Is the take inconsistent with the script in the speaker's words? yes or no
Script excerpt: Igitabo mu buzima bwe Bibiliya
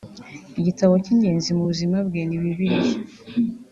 yes